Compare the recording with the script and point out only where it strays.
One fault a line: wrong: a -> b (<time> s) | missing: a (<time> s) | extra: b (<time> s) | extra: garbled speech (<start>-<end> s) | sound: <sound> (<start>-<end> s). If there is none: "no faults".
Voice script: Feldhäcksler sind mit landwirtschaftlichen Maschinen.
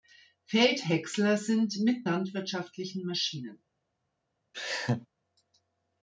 sound: laugh (4.5-5.1 s)